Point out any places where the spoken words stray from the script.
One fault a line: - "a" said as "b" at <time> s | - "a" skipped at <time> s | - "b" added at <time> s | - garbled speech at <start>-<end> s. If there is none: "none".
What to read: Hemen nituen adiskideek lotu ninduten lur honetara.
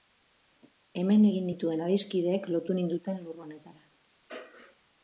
- "egin" added at 1.3 s